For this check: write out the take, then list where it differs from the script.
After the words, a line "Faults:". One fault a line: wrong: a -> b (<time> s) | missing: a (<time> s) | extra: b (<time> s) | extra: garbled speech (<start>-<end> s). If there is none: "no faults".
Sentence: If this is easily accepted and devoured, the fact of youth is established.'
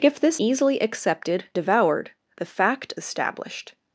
If this easily accepted devoured, the fact established.'
Faults:
missing: is (0.4 s)
missing: and (1.5 s)
missing: of youth is (2.9 s)